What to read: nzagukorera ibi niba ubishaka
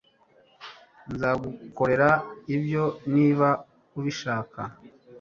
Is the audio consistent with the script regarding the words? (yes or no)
no